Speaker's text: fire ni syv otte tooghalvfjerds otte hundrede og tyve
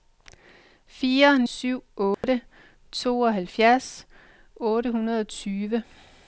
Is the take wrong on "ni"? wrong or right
wrong